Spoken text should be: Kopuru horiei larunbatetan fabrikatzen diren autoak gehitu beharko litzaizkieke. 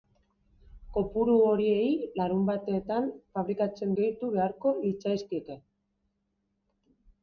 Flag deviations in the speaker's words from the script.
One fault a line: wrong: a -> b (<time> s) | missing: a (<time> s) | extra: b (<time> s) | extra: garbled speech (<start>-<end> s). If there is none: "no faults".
missing: diren autoak (3.9 s)